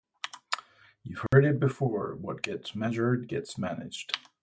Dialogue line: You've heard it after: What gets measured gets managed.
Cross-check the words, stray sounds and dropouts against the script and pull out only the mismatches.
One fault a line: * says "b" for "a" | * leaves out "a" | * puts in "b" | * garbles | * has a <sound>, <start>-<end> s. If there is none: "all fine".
* has a dropout, 1.3-1.3 s
* says "before" for "after"